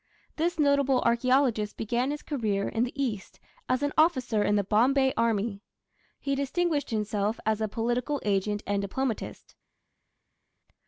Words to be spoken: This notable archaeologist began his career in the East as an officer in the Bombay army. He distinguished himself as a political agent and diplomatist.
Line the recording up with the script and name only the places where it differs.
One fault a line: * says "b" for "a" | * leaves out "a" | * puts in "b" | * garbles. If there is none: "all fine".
all fine